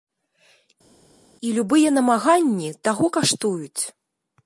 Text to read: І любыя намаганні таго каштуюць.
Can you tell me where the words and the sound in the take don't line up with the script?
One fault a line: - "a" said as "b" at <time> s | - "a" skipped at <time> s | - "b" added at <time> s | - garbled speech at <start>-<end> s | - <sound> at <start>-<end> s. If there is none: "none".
none